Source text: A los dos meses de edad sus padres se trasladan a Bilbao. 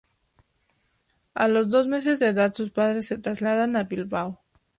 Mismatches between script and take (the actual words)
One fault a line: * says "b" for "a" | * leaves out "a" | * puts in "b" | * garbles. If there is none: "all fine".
all fine